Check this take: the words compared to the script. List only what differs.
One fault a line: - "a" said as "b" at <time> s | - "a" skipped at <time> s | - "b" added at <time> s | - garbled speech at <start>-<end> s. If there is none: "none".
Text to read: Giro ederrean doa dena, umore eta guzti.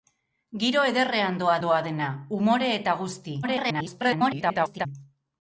- "doa" added at 1.7 s
- garbled speech at 3.4-4.9 s